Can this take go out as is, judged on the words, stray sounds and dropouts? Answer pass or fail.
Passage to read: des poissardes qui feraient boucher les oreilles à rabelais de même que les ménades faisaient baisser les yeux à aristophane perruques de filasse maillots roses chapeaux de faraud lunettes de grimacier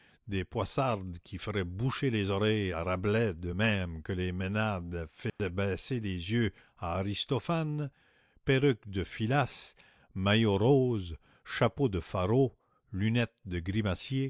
fail